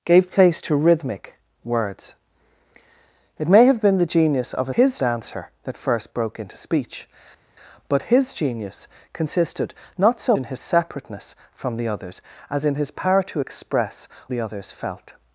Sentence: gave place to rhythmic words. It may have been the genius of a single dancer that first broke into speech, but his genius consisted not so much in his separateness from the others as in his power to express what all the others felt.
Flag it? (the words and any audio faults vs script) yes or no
yes